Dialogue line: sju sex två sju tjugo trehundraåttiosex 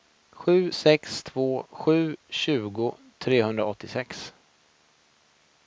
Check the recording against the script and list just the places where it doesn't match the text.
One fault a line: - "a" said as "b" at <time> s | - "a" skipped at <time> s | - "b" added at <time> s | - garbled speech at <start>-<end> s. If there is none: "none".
none